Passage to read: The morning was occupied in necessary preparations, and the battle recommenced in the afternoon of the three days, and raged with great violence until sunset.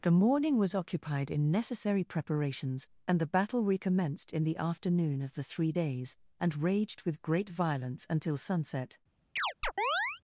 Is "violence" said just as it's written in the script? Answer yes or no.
yes